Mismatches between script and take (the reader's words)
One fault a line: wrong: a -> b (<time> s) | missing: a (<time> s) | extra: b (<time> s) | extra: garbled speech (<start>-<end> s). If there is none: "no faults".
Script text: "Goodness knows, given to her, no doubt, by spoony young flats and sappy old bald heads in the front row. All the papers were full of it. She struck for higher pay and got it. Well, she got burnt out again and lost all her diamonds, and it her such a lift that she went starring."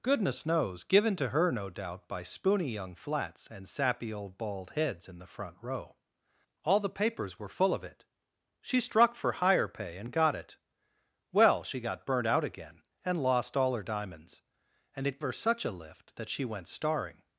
no faults